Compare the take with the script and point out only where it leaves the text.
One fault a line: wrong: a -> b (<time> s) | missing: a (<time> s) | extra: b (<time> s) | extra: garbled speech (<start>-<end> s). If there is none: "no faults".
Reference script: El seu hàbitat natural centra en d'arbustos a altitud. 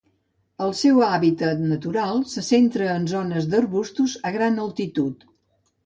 extra: se (2.3 s)
extra: zones (3.1 s)
extra: gran (4.4 s)